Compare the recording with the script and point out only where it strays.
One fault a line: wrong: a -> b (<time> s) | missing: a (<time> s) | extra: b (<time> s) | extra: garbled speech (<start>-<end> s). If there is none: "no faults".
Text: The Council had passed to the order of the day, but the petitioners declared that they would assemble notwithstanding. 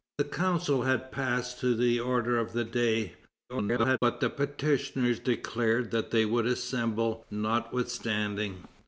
extra: garbled speech (3.5-4.0 s)